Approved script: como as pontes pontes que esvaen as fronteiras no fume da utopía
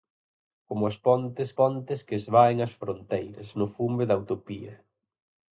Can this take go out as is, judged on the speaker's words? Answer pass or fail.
pass